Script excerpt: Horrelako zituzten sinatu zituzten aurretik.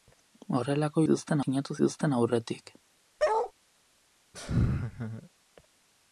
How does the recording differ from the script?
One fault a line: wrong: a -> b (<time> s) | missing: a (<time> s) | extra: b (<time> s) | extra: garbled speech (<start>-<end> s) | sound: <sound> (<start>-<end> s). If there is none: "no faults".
sound: bark (3.2-3.5 s)
sound: laugh (4.3-5.3 s)